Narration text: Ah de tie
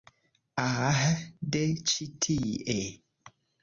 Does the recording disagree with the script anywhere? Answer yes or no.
yes